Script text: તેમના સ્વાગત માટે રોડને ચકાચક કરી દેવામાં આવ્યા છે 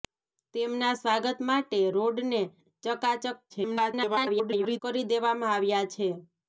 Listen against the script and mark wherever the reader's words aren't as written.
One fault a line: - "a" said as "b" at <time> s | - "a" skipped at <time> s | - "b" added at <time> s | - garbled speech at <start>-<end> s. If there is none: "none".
- garbled speech at 3.5-4.8 s